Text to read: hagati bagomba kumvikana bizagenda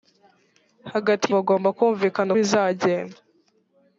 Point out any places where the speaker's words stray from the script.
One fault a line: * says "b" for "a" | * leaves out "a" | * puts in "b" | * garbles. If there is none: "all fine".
all fine